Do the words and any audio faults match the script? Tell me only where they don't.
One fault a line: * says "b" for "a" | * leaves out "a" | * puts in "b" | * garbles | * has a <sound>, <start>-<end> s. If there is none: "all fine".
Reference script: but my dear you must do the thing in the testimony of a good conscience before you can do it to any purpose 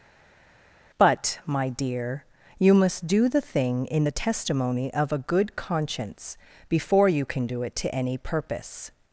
all fine